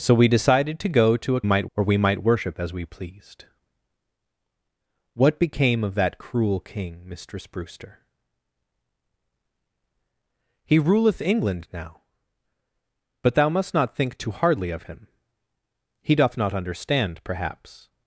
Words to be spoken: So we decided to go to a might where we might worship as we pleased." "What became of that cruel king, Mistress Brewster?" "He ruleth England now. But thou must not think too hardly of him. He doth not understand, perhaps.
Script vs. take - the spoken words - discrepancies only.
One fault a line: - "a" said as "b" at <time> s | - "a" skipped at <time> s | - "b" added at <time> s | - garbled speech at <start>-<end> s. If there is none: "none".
none